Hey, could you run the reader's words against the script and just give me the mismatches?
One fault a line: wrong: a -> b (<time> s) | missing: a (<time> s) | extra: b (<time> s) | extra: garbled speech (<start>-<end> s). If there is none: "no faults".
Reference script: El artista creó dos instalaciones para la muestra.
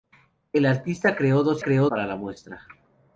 wrong: instalaciones -> creó (1.6 s)